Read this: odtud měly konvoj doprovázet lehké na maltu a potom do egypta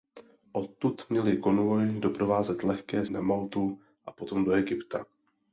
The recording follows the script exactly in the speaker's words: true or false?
true